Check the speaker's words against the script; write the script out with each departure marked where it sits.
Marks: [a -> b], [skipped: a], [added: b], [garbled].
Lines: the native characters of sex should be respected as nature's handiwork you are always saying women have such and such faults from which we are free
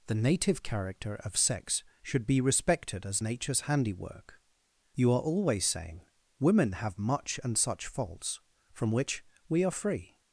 the native [characters -> character] of sex should be respected as nature's handiwork you are always saying women have [such -> much] and such faults from which we are free